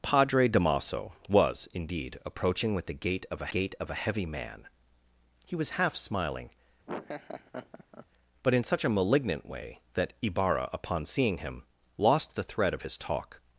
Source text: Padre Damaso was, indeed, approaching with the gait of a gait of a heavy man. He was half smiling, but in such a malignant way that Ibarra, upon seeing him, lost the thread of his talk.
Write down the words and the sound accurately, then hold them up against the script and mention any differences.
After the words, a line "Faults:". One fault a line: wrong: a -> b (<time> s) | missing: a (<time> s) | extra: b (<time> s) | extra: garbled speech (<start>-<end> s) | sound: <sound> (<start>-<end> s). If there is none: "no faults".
Padre Damaso was, indeed, approaching with the gait of a gait of a heavy man. He was half smiling, but in such a malignant way that Ibarra, upon seeing him, lost the thread of his talk.
Faults:
sound: laugh (6.9-8.1 s)